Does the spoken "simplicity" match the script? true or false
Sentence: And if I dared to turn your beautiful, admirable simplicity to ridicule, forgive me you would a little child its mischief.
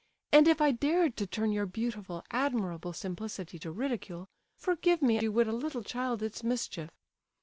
true